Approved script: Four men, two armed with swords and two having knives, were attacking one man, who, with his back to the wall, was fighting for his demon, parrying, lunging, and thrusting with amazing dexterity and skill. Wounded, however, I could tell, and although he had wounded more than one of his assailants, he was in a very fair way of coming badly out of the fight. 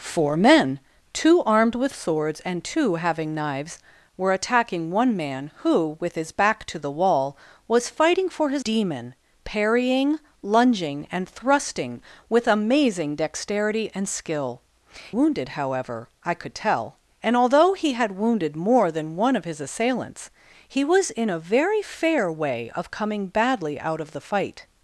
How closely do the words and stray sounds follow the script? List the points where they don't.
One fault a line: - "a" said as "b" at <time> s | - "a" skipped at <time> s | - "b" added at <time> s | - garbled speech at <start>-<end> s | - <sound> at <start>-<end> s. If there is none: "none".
none